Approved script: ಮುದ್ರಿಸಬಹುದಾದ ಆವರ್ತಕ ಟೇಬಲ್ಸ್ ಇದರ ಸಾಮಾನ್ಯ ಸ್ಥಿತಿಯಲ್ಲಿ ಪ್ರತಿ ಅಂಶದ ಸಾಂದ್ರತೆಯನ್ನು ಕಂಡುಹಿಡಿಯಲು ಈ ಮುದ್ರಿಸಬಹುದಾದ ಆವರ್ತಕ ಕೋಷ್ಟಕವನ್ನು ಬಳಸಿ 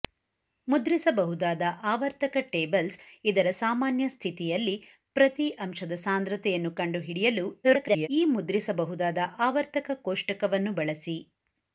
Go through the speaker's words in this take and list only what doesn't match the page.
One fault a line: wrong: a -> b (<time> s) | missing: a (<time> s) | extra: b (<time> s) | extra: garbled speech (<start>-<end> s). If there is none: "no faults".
extra: garbled speech (7.6-8.1 s)